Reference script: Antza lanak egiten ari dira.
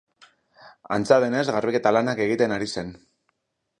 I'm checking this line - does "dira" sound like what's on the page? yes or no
no